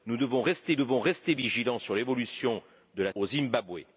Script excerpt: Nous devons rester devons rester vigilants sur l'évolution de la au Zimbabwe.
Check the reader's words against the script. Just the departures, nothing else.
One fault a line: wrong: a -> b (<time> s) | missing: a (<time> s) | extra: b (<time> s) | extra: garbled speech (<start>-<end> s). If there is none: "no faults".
no faults